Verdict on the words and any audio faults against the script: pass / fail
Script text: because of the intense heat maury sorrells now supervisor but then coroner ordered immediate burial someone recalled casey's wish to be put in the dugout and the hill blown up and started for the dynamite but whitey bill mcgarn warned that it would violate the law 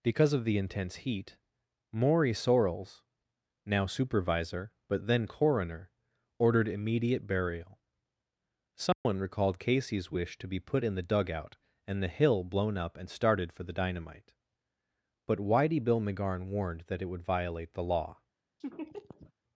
fail